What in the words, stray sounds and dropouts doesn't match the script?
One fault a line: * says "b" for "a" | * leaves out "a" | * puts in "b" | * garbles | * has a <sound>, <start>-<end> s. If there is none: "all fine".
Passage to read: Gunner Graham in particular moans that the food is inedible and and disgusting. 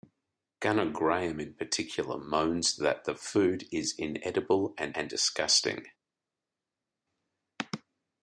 all fine